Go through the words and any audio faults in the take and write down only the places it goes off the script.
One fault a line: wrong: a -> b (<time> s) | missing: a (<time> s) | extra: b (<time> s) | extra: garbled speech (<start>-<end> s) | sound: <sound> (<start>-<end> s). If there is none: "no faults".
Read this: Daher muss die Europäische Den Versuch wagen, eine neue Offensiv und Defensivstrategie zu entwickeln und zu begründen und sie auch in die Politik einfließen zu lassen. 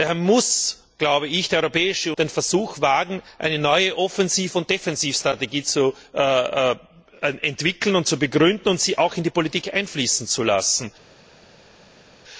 no faults